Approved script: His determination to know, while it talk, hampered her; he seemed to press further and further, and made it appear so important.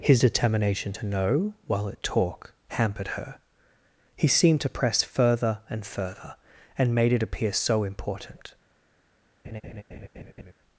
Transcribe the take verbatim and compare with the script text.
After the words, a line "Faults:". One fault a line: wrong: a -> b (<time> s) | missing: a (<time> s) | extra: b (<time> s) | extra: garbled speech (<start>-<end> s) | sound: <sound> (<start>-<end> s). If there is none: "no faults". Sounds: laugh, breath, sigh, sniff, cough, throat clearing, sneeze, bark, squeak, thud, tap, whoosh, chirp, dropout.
His determination to know, while it talk, hampered her; he seemed to press further and further, and made it appear so important.
Faults:
sound: laugh (9.4-10.5 s)